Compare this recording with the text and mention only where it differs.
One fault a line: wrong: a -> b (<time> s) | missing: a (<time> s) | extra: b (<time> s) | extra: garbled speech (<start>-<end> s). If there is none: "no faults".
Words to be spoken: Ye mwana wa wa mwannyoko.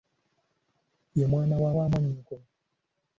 no faults